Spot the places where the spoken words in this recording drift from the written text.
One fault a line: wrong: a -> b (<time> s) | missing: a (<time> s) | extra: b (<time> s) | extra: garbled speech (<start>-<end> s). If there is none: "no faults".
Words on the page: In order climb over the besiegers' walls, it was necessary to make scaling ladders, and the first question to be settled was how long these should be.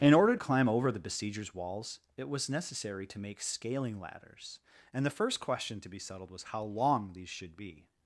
no faults